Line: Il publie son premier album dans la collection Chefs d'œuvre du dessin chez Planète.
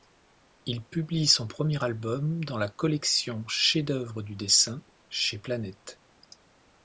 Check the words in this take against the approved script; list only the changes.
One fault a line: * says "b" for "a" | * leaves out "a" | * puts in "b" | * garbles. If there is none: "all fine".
all fine